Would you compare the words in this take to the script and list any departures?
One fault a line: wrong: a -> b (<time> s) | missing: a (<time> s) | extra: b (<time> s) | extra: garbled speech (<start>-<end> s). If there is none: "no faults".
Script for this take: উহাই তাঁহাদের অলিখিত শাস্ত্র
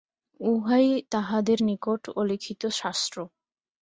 extra: নিকট (1.6 s)